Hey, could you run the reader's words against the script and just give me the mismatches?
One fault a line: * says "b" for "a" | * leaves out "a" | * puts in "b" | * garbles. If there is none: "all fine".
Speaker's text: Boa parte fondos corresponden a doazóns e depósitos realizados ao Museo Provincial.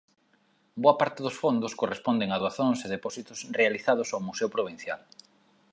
* puts in "dos"